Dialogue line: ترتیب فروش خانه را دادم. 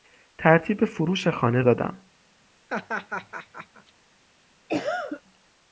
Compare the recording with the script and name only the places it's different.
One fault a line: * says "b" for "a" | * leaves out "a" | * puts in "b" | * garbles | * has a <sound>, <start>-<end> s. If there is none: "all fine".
* leaves out "را"
* has a laugh, 2.7-3.9 s
* has a cough, 4.7-5.2 s